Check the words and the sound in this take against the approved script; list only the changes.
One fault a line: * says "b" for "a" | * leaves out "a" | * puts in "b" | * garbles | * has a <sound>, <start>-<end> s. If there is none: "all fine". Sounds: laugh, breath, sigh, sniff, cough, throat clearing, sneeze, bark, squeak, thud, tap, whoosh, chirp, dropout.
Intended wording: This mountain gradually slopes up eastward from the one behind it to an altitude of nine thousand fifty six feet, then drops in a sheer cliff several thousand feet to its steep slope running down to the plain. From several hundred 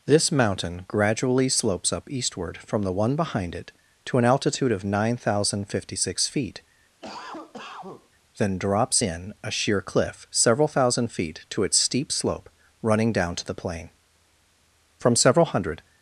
* has a cough, 7.0-8.1 s